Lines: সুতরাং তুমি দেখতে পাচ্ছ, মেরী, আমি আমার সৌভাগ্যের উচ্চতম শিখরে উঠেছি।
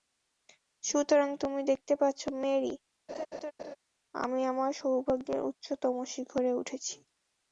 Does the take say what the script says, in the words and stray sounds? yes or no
no